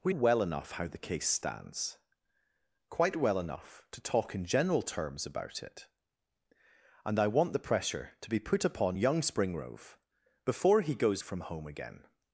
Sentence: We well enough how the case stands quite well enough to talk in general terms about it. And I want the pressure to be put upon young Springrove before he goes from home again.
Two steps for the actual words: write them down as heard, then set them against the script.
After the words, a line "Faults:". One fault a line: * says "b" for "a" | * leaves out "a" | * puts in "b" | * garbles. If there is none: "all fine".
We well enough how the case stands quite well enough to talk in general terms about it. And I want the pressure to be put upon young Springrove before he goes from home again.
Faults:
all fine